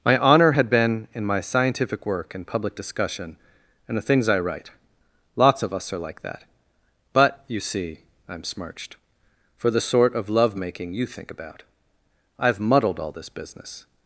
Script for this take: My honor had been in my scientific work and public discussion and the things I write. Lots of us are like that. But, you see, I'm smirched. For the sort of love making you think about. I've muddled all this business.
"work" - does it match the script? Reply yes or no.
yes